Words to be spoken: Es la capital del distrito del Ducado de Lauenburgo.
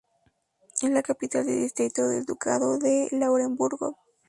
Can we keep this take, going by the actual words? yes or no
yes